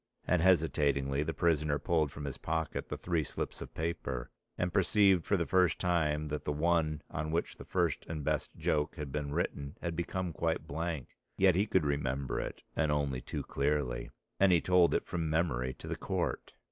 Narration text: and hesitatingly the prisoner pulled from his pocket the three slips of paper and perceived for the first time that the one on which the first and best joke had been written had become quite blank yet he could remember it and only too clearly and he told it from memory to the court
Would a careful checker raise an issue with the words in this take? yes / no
no